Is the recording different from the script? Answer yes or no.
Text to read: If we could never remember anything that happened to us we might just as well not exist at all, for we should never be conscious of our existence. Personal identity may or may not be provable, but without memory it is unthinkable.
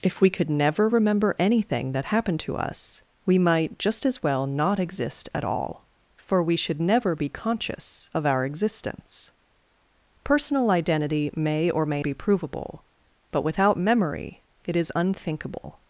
yes